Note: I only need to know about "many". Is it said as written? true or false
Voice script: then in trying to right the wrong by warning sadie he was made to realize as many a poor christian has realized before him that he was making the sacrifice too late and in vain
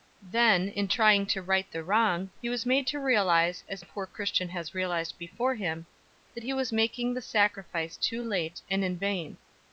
false